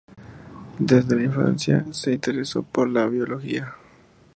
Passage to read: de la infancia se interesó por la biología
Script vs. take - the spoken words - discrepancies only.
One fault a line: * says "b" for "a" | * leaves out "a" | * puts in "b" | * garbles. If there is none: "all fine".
* says "desde" for "de"